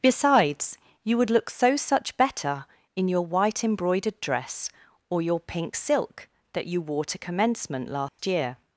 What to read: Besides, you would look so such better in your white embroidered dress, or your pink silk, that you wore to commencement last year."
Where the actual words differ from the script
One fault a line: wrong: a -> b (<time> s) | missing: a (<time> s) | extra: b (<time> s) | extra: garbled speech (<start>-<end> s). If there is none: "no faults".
no faults